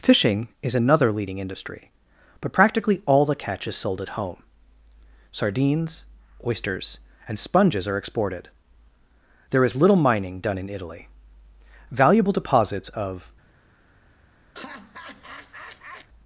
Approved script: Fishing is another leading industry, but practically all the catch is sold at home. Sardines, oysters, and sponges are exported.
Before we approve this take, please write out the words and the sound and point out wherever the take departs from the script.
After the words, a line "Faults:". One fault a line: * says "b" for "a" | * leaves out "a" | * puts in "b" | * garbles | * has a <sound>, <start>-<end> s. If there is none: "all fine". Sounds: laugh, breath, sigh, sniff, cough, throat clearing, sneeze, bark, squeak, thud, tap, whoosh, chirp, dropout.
Fishing is another leading industry, but practically all the catch is sold at home. Sardines, oysters, and sponges are exported. There is little mining done in Italy. Valuable deposits of
Faults:
* puts in "There is little mining done in Italy Valuable deposits of"
* has a laugh, 14.5-16.1 s